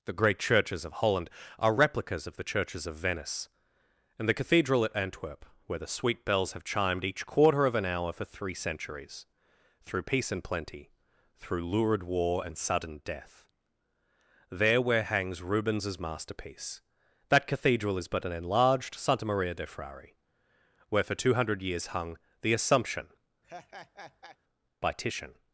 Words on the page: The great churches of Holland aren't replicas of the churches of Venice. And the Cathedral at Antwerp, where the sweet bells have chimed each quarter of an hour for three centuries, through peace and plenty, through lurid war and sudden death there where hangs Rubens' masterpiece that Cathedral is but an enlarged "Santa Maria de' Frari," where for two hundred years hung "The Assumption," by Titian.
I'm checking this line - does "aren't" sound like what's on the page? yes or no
no